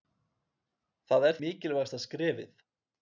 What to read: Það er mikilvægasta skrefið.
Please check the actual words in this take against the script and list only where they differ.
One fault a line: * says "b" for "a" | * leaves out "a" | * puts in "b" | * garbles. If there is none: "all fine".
all fine